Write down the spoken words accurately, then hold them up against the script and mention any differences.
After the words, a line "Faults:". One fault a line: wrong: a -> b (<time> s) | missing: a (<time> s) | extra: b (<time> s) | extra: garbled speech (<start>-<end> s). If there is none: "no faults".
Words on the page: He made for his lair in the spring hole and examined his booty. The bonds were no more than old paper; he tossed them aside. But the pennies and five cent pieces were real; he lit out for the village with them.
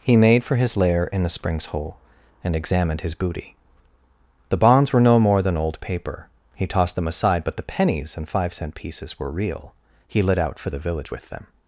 He made for his lair in the springs hole and examined his booty. The bonds were no more than old paper; he tossed them aside. But the pennies and five cent pieces were real; he lit out for the village with them.
Faults:
wrong: spring -> springs (1.3 s)